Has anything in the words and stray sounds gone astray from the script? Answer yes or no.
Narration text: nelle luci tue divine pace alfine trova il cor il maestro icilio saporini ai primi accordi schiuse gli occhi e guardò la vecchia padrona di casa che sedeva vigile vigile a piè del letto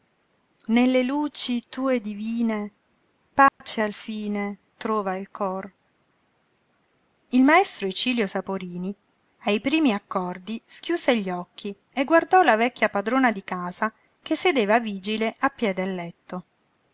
yes